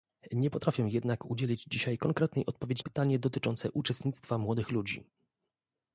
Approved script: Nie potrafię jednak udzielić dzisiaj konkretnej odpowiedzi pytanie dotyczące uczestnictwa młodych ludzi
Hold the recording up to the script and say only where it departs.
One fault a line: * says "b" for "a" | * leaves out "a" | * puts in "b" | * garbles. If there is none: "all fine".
all fine